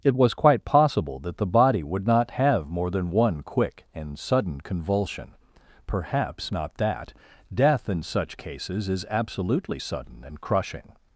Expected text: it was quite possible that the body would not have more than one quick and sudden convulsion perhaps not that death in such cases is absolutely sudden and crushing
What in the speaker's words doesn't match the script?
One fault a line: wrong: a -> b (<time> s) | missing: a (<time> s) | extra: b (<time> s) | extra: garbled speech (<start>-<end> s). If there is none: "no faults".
no faults